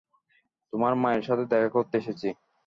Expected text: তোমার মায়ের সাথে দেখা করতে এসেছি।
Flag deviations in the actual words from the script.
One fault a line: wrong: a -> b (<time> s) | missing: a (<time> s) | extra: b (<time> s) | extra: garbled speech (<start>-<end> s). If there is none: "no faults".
no faults